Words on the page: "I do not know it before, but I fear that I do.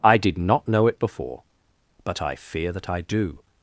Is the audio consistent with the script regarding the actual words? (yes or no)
no